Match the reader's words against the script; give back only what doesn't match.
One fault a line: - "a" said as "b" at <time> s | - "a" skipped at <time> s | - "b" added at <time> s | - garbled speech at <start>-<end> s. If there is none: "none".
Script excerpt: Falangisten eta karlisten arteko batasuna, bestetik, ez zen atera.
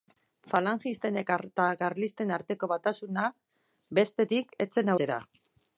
none